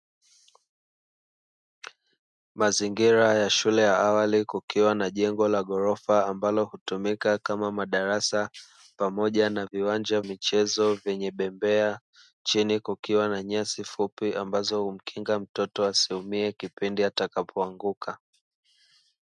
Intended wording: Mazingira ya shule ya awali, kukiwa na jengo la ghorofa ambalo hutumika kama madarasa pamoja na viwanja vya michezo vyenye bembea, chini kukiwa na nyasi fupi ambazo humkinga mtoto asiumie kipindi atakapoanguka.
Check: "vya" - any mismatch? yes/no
yes